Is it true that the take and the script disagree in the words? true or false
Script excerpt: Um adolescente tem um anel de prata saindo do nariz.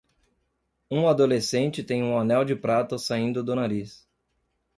false